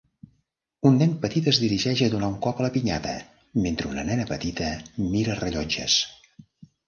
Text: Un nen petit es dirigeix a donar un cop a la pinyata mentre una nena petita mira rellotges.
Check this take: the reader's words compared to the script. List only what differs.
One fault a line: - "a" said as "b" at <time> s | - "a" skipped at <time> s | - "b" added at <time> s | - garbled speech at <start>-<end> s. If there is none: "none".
none